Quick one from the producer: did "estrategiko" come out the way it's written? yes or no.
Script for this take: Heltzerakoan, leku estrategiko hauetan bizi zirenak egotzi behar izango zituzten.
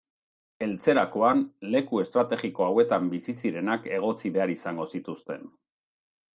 yes